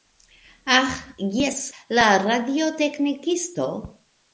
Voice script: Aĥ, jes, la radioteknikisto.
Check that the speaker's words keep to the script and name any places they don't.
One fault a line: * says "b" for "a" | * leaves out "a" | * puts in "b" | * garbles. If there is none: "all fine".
all fine